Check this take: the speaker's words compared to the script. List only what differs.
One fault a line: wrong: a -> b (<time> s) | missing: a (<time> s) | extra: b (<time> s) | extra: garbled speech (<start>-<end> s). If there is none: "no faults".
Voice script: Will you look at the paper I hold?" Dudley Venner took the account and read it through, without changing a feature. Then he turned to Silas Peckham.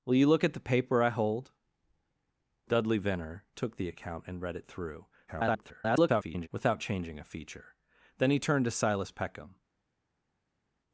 extra: garbled speech (5.3-6.5 s)